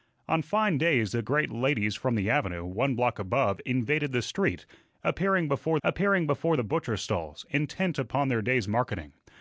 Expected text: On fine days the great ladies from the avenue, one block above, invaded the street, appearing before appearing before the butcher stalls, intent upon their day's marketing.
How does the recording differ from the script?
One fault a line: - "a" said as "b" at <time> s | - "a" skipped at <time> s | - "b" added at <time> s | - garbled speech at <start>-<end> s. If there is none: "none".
none